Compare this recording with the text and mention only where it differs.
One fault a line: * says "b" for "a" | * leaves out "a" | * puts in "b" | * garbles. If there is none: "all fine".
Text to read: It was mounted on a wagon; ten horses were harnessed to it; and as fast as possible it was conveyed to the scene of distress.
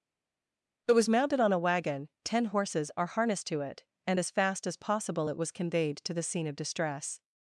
* says "are" for "were"